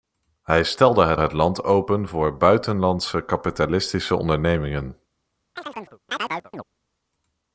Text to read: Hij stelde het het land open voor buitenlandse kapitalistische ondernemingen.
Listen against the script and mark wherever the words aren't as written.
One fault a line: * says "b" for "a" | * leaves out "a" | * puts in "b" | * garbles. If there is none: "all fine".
all fine